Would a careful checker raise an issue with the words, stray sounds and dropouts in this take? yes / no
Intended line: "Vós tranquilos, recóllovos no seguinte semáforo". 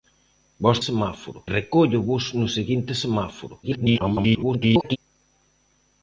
yes